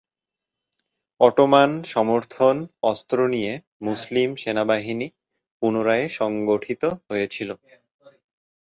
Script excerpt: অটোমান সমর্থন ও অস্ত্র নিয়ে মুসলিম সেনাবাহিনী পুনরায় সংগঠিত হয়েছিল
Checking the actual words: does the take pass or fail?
fail